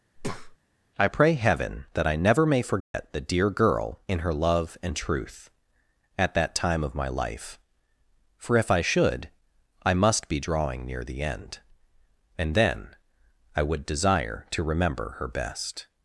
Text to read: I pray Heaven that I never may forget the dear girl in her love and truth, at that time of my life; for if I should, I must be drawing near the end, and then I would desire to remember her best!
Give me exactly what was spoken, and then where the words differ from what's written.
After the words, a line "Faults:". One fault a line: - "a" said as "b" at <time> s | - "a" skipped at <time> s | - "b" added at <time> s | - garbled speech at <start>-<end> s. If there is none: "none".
I pray Heaven that I never may forget the dear girl in her love and truth, at that time of my life; for if I should, I must be drawing near the end, and then I would desire to remember her best!
Faults:
none